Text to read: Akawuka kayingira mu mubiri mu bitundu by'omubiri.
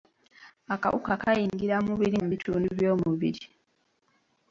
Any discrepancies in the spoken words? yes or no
no